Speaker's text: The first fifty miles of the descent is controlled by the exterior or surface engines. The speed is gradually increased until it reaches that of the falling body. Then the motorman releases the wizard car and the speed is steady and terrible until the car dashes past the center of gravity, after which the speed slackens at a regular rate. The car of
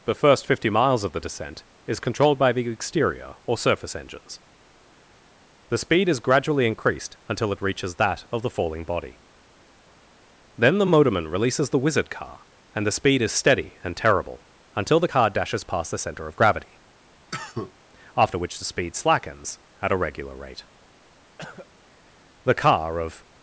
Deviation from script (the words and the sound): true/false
true